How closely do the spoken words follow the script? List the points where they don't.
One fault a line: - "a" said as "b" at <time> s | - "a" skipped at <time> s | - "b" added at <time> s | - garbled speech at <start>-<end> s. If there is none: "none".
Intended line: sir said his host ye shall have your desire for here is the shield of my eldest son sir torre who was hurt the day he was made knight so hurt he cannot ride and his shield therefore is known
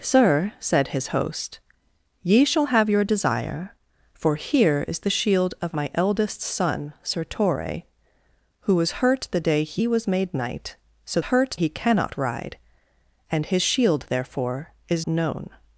none